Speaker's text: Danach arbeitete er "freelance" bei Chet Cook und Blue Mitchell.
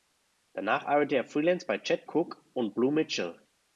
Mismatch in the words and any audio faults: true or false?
false